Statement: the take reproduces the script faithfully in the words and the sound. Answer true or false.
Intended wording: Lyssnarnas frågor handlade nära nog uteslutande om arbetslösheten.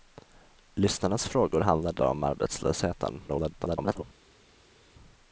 false